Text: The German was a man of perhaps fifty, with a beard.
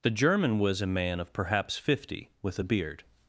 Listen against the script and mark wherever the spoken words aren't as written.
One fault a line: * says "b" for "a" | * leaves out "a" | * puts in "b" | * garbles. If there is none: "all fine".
all fine